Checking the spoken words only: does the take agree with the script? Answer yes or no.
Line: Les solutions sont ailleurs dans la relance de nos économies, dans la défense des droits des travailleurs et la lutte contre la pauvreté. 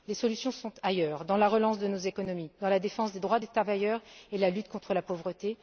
yes